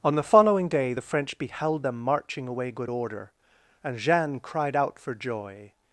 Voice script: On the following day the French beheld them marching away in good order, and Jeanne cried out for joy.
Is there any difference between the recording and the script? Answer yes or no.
yes